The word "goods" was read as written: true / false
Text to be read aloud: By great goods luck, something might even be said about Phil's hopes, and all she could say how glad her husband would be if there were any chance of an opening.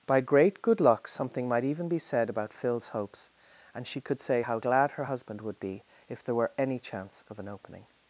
false